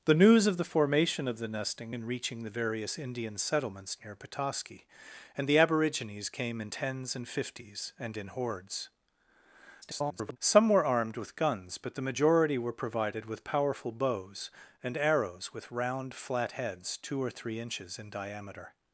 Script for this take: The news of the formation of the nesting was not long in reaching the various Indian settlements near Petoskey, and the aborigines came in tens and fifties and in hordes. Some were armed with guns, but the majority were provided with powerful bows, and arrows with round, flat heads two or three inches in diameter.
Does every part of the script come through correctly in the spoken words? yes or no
no